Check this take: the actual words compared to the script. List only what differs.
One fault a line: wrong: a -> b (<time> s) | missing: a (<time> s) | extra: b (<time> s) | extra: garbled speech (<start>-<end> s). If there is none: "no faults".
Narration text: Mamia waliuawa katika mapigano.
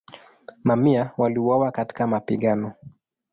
no faults